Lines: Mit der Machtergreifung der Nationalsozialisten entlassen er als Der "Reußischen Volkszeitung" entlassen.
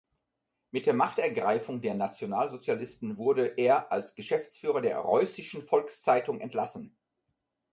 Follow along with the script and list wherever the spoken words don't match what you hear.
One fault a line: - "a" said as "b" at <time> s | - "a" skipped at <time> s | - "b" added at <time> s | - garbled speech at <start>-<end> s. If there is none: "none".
- "entlassen" said as "wurde" at 3.2 s
- "Geschäftsführer" added at 4.1 s